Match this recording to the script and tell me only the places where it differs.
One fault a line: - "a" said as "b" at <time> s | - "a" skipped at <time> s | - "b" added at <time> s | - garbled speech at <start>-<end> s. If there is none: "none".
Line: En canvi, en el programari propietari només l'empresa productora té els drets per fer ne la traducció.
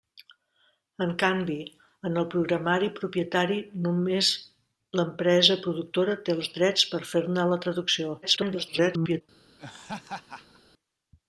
- garbled speech at 8.2-9.2 s